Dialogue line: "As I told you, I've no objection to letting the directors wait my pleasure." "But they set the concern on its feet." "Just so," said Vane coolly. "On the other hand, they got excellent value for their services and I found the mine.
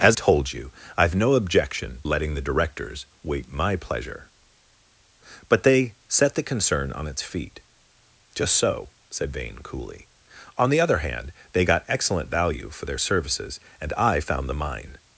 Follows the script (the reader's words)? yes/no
no